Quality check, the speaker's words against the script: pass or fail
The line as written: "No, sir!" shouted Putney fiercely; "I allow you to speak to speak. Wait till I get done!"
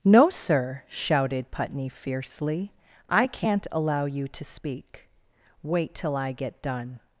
fail